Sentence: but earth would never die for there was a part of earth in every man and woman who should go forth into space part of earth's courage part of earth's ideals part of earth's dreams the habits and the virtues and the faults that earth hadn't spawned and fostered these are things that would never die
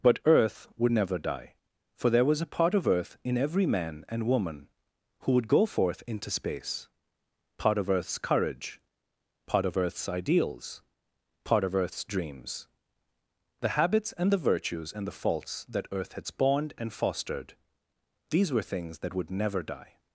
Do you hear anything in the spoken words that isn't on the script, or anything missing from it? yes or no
yes